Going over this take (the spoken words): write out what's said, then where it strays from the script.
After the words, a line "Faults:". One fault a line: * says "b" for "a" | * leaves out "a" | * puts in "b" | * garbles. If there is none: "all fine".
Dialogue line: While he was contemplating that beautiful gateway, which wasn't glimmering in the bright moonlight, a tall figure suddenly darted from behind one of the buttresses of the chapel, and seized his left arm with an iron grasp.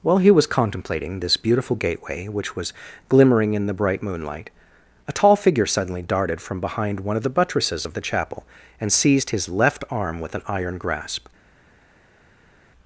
While he was contemplating this beautiful gateway, which was glimmering in the bright moonlight, a tall figure suddenly darted from behind one of the buttresses of the chapel, and seized his left arm with an iron grasp.
Faults:
* says "this" for "that"
* says "was" for "wasn't"